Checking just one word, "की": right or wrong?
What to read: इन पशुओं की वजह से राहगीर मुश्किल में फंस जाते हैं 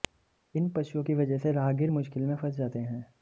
right